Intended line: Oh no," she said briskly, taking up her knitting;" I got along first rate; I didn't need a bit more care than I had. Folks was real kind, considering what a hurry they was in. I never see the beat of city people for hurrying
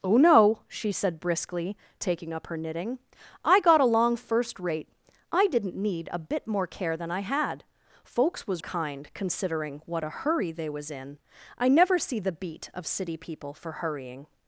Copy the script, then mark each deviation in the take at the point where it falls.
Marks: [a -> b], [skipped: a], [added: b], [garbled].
Oh no," she said briskly, taking up her knitting;" I got along first rate; I didn't need a bit more care than I had. Folks was [skipped: real] kind, considering what a hurry they was in. I never see the beat of city people for hurrying